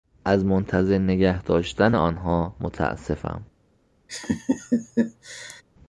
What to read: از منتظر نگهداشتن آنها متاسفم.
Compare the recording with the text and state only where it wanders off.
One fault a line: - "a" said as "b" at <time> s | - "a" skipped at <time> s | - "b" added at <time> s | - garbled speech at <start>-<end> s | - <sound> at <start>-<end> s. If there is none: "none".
- laugh at 4.1-5.6 s